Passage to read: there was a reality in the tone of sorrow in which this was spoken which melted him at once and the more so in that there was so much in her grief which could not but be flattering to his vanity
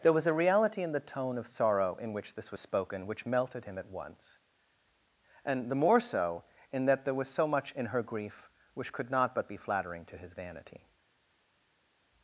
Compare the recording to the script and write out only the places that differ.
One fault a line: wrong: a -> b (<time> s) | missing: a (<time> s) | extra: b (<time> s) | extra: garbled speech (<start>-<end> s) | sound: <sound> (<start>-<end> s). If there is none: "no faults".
no faults